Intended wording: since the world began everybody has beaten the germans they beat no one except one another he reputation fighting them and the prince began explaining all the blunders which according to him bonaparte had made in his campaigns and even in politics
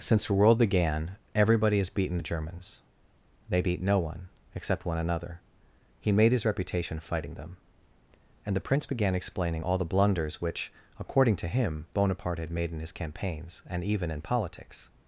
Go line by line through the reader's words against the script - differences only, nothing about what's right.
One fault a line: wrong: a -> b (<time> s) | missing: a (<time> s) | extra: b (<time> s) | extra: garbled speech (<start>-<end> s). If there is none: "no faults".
extra: made his (6.1 s)